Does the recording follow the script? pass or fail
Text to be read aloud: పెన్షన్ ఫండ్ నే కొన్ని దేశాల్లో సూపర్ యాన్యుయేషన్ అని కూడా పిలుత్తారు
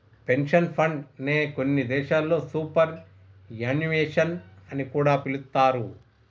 pass